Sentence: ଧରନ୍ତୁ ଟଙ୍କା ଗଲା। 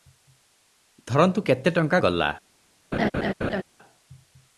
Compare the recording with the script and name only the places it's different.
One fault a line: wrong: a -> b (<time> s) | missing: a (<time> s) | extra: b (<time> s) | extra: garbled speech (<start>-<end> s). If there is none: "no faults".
extra: କେତେ (1.4 s)